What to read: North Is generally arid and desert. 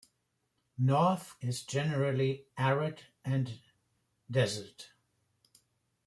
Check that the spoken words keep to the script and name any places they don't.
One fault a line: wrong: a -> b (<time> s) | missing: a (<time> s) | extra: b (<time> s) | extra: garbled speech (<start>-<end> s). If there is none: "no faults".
no faults